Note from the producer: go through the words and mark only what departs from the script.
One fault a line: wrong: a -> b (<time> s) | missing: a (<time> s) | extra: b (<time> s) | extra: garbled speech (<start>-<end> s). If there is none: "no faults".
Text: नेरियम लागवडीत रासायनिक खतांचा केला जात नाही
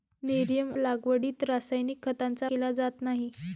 no faults